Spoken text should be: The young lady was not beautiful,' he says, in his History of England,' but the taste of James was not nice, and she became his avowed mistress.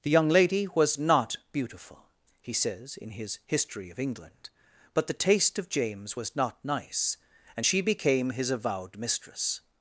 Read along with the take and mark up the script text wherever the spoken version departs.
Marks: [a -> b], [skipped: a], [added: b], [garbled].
The young lady was not beautiful,' he says, in his History of England,' but the taste of James was not nice, and she became his avowed mistress.